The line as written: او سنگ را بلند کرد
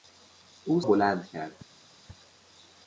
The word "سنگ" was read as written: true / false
false